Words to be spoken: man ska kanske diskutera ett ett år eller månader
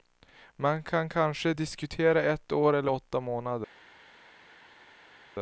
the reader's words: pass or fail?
fail